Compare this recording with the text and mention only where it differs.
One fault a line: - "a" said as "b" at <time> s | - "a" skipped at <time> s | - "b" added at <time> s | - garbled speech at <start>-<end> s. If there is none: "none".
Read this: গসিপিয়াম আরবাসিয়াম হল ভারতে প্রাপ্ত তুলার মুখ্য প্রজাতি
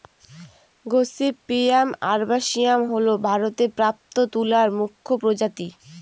none